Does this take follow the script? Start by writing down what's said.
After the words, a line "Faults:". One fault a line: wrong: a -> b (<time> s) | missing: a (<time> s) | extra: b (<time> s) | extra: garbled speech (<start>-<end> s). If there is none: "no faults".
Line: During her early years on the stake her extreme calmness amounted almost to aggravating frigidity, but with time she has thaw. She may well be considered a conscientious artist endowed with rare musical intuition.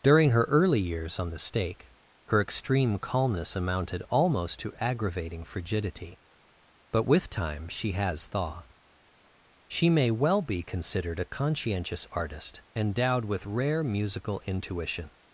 During her early years on the stake her extreme calmness amounted almost to aggravating frigidity, but with time she has thaw. She may well be considered a conscientious artist endowed with rare musical intuition.
Faults:
no faults